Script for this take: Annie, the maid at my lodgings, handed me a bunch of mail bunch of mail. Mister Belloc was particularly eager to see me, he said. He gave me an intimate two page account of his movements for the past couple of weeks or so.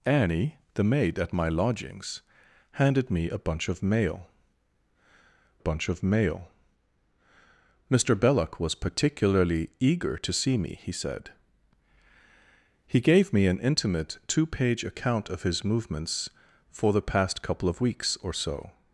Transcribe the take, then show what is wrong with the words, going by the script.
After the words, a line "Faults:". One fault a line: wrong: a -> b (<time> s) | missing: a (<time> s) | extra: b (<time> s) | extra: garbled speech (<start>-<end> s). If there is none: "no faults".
Annie, the maid at my lodgings, handed me a bunch of mail bunch of mail. Mister Belloc was particularly eager to see me, he said. He gave me an intimate two page account of his movements for the past couple of weeks or so.
Faults:
no faults